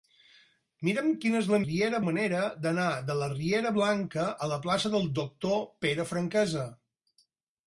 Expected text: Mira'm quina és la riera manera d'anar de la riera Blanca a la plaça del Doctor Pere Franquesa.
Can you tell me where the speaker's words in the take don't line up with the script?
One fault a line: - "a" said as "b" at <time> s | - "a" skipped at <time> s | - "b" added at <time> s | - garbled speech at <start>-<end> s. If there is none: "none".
none